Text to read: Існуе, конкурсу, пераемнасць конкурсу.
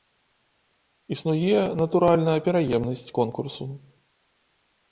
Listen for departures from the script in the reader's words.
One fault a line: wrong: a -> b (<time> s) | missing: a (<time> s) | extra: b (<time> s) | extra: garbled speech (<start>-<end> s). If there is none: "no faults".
wrong: конкурсу -> натуральна (1.8 s)